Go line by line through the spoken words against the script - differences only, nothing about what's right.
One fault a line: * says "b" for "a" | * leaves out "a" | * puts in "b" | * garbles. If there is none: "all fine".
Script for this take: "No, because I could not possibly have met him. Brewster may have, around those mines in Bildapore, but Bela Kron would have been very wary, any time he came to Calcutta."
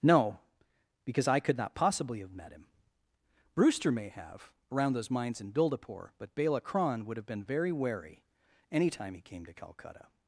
all fine